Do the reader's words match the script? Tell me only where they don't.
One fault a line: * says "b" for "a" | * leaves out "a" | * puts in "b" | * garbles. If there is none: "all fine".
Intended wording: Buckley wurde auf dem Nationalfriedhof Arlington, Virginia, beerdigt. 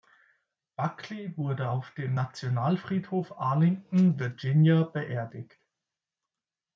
all fine